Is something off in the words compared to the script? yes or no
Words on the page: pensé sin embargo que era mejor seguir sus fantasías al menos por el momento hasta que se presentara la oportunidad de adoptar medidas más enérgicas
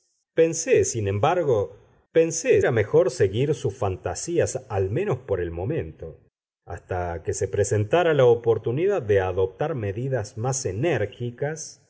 yes